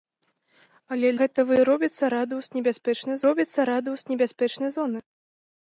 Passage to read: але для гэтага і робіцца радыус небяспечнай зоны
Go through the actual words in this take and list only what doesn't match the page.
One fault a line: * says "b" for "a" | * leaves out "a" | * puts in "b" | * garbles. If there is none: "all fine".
* leaves out "для"
* puts in "робіцца радыус небяспечнай"